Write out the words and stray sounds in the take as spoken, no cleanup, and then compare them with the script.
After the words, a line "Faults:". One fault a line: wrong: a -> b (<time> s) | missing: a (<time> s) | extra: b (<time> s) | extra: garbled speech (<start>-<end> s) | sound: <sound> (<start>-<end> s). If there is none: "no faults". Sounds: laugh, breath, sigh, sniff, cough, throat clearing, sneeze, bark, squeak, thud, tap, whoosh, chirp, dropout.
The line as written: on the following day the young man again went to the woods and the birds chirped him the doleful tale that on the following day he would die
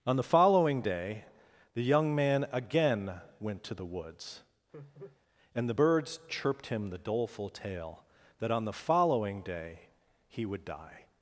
on the following day the young man again went to the woods and the birds chirped him the doleful tale that on the following day he would die
Faults:
sound: laugh (4.7-5.2 s)